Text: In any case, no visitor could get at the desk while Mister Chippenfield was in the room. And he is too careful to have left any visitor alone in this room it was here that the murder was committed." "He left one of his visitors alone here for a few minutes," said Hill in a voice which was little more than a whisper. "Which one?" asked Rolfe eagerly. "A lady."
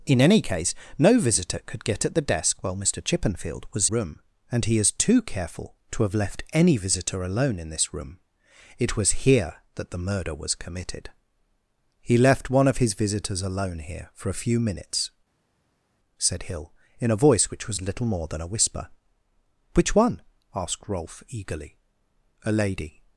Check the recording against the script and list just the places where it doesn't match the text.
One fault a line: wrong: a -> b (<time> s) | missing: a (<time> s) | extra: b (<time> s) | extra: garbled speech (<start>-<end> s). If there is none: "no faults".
missing: in the (3.9 s)